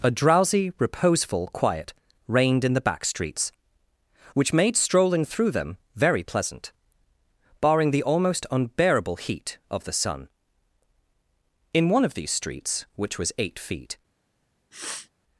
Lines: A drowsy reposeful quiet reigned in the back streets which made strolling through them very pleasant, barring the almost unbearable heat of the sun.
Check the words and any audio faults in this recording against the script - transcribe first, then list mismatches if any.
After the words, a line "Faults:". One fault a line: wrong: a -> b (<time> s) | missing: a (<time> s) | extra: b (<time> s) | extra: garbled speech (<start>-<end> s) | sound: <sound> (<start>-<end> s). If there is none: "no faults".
A drowsy reposeful quiet reigned in the back streets which made strolling through them very pleasant, barring the almost unbearable heat of the sun. In one of these streets, which was eight feet
Faults:
extra: In one of these streets which was eight feet (11.7 s)
sound: sniff (14.7-15.1 s)